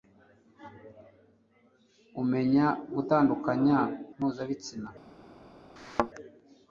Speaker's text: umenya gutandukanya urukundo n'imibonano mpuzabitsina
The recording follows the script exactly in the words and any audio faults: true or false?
false